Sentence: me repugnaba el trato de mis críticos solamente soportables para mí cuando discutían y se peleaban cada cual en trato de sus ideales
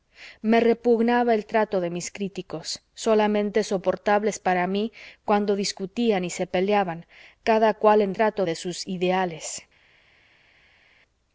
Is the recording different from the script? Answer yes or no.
no